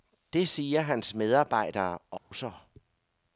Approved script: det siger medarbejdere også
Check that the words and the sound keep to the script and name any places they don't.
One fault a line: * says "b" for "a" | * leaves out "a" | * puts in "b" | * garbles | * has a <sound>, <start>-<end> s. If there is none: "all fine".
* puts in "hans"
* has a dropout, 2.2-2.3 s